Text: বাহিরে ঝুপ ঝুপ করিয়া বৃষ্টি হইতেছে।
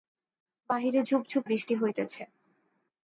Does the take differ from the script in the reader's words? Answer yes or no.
yes